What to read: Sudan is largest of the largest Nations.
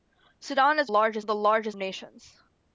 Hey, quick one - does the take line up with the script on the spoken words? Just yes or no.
yes